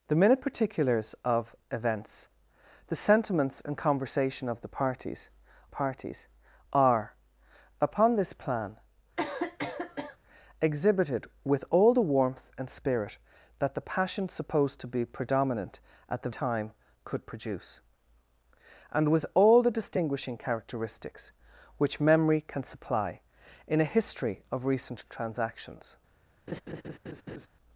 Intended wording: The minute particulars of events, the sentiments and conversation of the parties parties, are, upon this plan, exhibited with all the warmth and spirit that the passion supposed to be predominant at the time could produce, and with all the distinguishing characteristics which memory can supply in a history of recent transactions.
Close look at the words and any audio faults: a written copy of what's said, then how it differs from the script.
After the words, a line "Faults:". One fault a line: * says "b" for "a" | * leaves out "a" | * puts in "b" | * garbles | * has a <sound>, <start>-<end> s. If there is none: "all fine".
The minute particulars of events, the sentiments and conversation of the parties parties, are, upon this plan, exhibited with all the warmth and spirit that the passion supposed to be predominant at the time could produce, and with all the distinguishing characteristics which memory can supply in a history of recent transactions.
Faults:
* has a cough, 9.2-10.2 s
* has a laugh, 26.5-27.5 s